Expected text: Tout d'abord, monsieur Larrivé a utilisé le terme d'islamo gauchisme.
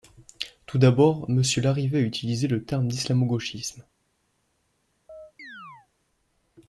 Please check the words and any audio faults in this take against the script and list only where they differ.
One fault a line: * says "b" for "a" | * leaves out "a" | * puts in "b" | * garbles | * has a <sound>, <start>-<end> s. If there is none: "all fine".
* has a chirp, 5.1-5.9 s